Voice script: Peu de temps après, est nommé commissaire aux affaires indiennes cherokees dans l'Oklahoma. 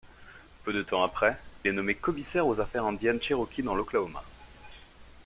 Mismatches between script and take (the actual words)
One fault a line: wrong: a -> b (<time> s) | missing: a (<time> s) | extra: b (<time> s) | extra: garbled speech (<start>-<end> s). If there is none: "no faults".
no faults